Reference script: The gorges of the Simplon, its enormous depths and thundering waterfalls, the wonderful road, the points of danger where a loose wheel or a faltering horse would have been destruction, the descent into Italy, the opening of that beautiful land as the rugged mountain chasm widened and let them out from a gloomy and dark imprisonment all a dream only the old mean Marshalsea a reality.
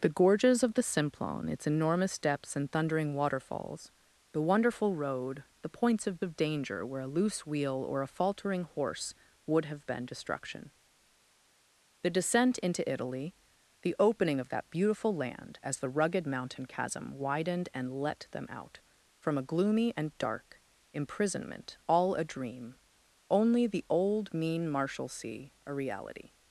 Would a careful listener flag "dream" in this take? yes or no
no